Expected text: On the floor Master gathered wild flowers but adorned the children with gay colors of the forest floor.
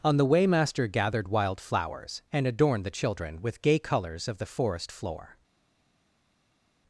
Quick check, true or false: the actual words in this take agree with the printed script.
false